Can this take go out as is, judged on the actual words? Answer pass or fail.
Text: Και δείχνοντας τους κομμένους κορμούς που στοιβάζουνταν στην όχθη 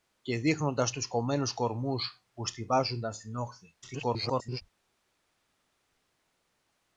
fail